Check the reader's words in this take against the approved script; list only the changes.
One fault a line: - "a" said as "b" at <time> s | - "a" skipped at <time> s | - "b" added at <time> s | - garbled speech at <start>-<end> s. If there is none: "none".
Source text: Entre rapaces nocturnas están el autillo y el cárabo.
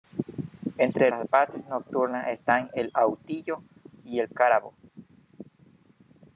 none